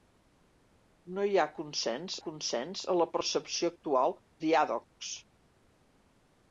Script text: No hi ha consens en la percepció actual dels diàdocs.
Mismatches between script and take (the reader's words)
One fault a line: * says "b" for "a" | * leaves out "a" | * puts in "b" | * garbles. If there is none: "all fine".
* puts in "consens"
* leaves out "dels"